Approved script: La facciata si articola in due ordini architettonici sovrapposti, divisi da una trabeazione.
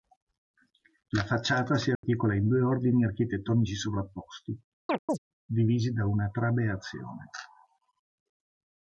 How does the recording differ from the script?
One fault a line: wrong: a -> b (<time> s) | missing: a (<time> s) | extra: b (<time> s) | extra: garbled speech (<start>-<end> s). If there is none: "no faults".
no faults